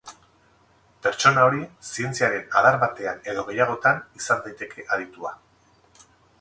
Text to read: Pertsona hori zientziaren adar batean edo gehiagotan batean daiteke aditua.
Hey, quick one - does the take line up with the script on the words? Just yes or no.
no